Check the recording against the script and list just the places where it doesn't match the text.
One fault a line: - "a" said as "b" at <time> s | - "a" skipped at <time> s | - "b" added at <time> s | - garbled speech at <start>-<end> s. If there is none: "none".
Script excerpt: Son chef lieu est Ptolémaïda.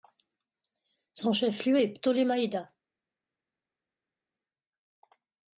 none